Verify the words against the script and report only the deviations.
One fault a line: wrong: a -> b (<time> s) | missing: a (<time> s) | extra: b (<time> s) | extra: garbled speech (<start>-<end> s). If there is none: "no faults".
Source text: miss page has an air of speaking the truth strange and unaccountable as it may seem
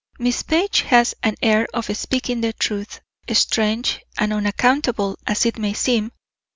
no faults